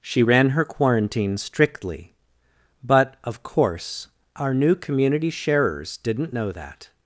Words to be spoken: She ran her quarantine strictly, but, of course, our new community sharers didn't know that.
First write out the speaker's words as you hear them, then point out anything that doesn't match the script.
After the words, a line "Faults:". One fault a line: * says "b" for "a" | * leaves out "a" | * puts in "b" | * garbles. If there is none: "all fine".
She ran her quarantine strictly, but, of course, our new community sharers didn't know that.
Faults:
all fine